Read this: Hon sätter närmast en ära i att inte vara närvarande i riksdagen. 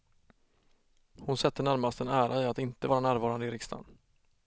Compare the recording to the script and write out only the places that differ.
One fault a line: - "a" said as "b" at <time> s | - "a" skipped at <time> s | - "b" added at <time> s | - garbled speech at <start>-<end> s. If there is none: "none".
none